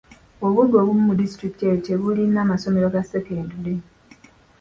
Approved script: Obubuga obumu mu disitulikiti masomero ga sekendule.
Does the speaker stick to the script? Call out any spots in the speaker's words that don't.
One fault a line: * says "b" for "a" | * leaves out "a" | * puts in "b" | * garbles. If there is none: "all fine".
* puts in "eyo tebulina"